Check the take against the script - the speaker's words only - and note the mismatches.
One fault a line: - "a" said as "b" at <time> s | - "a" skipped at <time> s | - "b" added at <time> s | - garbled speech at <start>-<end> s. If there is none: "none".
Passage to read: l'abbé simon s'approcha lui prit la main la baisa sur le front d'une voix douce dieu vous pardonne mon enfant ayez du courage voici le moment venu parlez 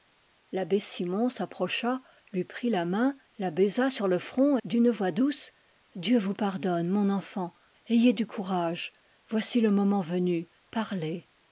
none